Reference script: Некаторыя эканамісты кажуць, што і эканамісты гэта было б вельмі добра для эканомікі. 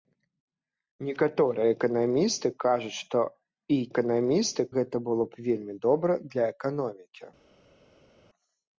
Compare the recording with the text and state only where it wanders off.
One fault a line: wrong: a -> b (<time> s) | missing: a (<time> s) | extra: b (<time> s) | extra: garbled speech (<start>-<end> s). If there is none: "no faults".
no faults